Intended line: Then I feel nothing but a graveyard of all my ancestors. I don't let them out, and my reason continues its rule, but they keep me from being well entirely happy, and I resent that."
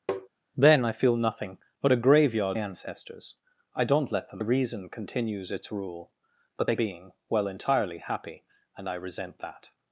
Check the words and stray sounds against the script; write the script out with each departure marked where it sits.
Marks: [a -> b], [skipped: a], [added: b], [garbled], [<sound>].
[tap] Then I feel nothing but a graveyard [skipped: of all my] ancestors. I don't let them [skipped: out, and my] reason continues its rule, but they [skipped: keep me from] being well entirely happy, and I resent that."